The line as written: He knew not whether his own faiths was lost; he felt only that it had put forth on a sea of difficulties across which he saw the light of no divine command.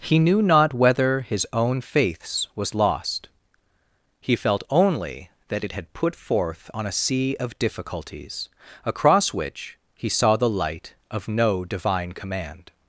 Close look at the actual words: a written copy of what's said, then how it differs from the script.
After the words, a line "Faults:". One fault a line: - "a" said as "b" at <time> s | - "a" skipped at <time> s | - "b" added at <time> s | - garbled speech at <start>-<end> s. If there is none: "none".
He knew not whether his own faiths was lost; he felt only that it had put forth on a sea of difficulties across which he saw the light of no divine command.
Faults:
none